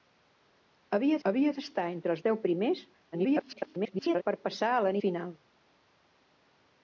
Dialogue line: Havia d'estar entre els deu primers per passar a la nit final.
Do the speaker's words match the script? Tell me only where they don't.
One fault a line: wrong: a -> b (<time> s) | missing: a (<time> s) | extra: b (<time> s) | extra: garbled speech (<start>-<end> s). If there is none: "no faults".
extra: havia (1.3 s)
extra: garbled speech (3.1-4.2 s)
missing: nit (5.0 s)